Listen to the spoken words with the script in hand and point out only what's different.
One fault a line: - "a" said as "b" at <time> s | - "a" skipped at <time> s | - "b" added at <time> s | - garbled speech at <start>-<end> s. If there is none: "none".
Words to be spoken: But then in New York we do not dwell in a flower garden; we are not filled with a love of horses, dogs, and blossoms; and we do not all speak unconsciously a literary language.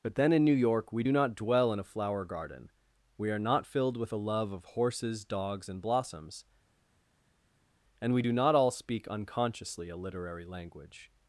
none